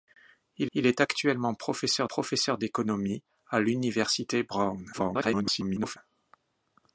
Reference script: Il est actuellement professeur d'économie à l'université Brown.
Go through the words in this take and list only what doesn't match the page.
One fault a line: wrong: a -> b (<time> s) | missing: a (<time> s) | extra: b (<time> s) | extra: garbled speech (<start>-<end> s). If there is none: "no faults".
extra: il (0.7 s)
extra: professeur (2.0 s)
extra: garbled speech (4.9-6.0 s)